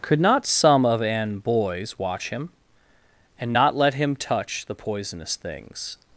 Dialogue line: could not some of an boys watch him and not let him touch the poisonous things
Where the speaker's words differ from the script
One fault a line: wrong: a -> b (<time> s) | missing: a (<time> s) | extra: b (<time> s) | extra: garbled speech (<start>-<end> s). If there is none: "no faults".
no faults